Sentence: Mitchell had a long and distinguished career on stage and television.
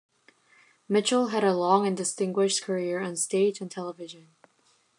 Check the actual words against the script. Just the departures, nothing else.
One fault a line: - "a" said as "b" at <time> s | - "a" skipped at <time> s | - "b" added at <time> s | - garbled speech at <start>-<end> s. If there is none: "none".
none